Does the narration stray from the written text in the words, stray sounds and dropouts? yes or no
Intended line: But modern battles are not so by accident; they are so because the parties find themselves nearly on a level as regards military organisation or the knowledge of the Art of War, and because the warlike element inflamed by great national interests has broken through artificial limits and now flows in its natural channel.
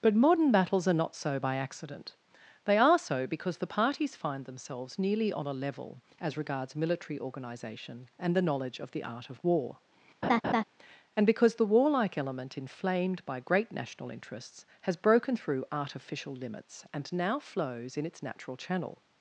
yes